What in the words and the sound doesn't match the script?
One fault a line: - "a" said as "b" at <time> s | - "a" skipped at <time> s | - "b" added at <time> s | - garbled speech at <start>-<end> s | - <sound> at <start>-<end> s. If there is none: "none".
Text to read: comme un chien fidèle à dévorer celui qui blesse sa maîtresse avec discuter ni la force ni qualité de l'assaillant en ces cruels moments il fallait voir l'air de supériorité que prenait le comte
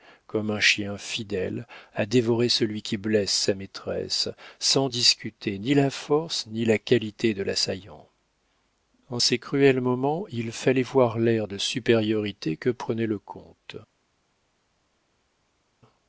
- "avec" said as "sans" at 4.6 s
- "la" added at 6.6 s